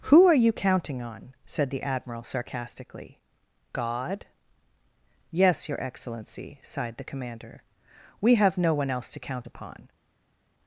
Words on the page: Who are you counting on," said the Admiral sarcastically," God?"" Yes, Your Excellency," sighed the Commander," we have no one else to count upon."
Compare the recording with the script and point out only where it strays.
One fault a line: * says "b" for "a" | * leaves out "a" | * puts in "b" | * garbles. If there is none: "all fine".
all fine